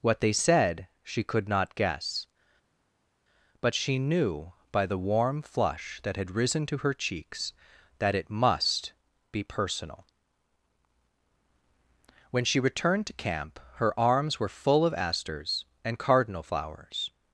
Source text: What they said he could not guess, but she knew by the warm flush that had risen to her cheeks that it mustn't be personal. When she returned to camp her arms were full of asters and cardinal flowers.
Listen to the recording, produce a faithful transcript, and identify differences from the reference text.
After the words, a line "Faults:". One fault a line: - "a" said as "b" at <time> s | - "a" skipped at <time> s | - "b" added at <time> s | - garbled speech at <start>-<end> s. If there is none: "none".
What they said she could not guess, but she knew by the warm flush that had risen to her cheeks that it must be personal. When she returned to camp her arms were full of asters and cardinal flowers.
Faults:
- "he" said as "she" at 1.0 s
- "mustn't" said as "must" at 8.3 s